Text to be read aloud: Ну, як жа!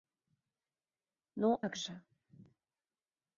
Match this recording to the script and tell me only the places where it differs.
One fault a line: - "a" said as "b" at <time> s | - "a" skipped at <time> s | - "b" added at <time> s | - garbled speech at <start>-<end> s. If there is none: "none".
none